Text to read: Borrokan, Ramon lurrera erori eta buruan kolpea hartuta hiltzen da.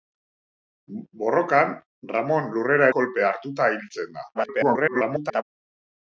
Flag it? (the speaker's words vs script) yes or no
yes